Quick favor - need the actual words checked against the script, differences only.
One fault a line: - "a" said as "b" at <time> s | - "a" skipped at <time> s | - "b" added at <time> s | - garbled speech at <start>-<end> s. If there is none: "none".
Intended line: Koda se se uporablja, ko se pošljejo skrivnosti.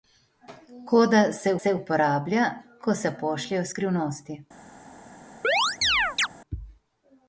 none